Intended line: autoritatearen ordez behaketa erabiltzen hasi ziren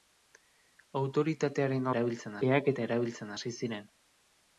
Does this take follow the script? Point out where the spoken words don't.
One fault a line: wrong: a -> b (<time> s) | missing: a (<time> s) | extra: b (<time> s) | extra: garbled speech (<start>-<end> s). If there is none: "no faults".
wrong: ordez -> erabiltzen (1.9 s)